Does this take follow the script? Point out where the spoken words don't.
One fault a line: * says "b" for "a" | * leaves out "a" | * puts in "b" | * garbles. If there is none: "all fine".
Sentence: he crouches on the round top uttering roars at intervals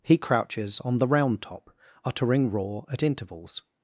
* says "roar" for "roars"